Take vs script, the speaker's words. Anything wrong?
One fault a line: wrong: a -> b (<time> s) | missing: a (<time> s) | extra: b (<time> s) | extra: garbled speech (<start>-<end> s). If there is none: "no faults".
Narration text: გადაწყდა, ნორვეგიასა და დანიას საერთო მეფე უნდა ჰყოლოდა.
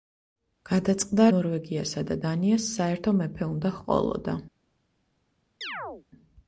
no faults